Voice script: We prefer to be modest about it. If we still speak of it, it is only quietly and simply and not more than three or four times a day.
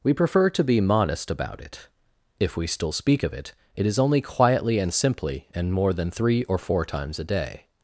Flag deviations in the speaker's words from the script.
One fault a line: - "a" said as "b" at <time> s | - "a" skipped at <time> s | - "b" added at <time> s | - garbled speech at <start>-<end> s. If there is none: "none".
- "not" skipped at 5.7 s